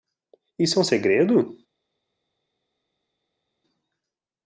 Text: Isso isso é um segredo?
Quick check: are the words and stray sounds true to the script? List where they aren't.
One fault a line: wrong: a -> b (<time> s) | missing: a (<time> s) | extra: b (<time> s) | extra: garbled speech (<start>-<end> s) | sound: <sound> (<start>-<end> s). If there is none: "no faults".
missing: isso (0.8 s)